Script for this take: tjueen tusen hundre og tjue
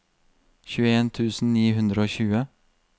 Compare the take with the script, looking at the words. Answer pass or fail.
fail